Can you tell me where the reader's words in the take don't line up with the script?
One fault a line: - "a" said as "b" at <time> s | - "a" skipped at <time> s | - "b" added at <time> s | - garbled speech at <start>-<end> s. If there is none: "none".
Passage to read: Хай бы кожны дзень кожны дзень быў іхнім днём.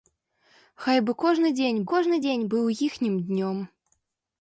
none